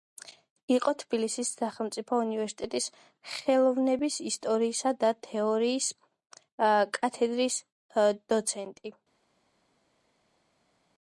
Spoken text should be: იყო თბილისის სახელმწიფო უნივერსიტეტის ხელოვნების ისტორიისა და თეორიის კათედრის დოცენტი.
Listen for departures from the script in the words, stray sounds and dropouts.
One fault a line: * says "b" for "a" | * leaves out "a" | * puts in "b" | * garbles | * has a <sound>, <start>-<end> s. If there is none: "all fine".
all fine